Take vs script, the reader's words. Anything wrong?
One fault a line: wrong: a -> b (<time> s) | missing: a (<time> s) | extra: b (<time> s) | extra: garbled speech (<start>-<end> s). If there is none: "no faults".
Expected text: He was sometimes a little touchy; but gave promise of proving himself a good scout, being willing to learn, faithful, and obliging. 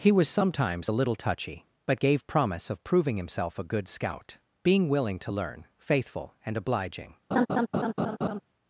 no faults